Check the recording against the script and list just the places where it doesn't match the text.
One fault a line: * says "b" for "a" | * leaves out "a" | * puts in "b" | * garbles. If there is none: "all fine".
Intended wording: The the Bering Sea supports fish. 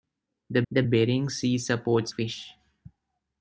all fine